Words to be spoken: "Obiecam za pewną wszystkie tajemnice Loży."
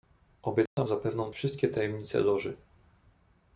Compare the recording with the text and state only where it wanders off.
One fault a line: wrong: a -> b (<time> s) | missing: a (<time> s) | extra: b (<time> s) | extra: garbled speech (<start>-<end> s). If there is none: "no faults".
no faults